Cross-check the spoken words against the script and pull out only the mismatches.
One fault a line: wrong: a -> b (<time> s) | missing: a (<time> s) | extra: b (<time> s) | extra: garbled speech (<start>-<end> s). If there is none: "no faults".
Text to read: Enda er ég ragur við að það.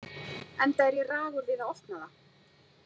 extra: opna (1.8 s)